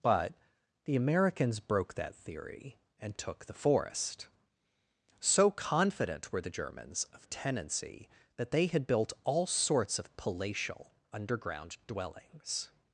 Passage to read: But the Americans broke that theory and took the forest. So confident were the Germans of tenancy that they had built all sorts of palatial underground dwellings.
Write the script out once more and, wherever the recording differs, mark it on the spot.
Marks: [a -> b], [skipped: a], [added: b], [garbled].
But the Americans broke that theory and took the forest. So confident were the Germans of tenancy that they had built all sorts of palatial underground dwellings.